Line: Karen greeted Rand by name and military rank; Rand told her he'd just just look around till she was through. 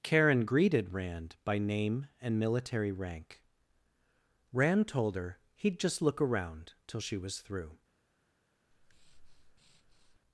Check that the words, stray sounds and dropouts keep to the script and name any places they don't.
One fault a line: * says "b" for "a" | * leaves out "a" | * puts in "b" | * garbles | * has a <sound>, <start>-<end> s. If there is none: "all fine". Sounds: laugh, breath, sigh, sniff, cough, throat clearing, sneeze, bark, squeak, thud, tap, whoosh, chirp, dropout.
* leaves out "just"
* has a breath, 8.7-10.2 s